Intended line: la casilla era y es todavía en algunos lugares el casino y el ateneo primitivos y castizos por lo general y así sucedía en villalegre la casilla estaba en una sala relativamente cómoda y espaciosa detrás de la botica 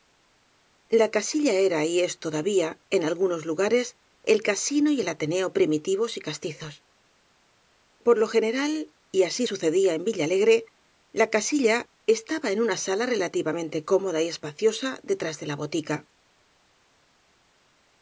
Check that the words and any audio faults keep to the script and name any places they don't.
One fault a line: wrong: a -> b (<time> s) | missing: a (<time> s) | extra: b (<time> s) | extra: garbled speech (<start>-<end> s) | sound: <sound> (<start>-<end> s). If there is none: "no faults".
no faults